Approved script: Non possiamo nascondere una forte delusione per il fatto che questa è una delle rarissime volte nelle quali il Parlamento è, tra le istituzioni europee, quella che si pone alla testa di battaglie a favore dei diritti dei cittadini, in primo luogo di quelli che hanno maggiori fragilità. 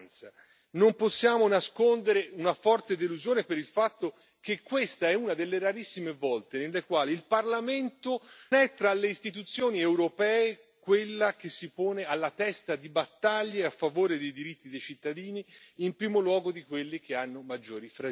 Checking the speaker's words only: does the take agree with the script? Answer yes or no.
yes